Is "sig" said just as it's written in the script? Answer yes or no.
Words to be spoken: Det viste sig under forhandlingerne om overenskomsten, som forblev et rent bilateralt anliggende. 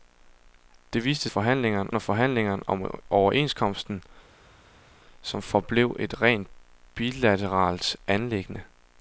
no